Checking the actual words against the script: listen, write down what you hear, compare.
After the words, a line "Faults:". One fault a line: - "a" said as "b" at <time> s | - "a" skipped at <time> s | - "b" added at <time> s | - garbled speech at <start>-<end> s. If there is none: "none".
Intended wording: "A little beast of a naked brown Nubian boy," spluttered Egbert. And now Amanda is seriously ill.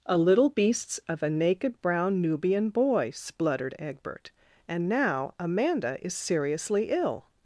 "A little beasts of a naked brown Nubian boy," spluttered Egbert. And now Amanda is seriously ill.
Faults:
- "beast" said as "beasts" at 0.5 s